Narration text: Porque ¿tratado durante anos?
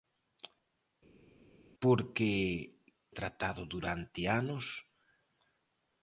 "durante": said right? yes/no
yes